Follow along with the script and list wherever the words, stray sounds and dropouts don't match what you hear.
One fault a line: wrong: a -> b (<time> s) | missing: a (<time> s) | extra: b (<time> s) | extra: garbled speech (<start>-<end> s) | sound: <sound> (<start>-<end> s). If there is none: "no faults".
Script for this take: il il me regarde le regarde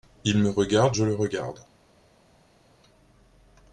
missing: il (0.4 s)
extra: je (0.9 s)